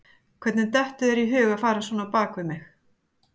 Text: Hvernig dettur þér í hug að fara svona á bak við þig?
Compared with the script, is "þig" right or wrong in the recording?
wrong